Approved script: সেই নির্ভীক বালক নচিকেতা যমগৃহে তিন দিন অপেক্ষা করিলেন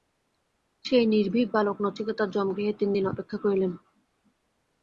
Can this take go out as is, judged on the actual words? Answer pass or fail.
pass